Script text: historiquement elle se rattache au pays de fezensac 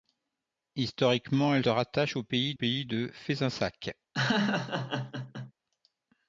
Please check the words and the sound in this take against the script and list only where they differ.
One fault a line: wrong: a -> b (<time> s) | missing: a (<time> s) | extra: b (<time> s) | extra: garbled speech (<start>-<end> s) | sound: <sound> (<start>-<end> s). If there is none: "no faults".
missing: se (1.7 s)
extra: pays (2.5 s)
sound: laugh (4.1-5.5 s)